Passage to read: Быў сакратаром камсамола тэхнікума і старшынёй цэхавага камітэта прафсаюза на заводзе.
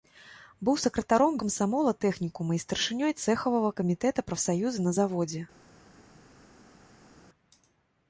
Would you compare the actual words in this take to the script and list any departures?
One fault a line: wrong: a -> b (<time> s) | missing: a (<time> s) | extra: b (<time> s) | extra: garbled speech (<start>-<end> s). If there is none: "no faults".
no faults